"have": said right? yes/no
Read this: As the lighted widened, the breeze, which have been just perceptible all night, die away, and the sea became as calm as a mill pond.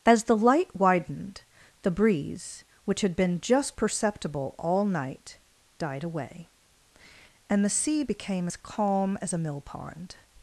no